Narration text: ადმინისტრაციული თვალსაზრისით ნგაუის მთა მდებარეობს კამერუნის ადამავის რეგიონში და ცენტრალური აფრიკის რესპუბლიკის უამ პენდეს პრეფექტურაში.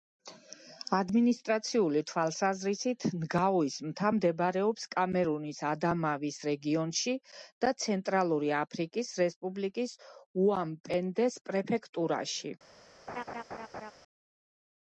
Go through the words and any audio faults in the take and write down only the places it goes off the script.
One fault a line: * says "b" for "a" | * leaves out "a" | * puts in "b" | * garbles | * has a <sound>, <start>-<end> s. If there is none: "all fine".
* has a laugh, 13.1-13.9 s